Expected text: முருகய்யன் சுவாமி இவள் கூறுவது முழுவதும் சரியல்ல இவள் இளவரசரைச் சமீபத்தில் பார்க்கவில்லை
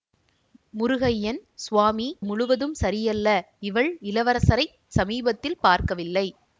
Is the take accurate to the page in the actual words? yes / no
no